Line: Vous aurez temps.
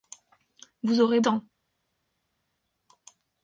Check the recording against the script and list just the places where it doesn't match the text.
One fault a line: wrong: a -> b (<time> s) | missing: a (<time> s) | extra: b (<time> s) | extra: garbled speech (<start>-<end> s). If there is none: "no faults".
no faults